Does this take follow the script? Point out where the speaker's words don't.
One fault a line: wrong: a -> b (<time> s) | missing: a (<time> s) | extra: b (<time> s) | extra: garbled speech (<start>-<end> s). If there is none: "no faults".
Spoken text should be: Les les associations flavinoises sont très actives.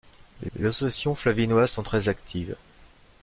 no faults